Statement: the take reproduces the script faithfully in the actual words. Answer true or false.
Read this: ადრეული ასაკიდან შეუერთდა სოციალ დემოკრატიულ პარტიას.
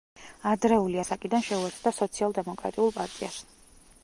true